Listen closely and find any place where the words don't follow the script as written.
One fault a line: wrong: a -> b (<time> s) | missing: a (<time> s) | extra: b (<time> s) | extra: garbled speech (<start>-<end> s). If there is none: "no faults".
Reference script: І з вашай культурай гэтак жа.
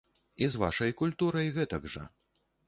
no faults